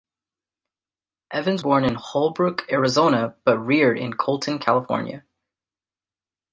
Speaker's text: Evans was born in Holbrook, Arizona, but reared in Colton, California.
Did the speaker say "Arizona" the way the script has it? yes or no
yes